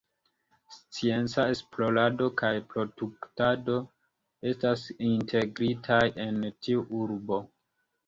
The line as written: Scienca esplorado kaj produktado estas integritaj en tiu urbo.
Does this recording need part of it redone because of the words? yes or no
no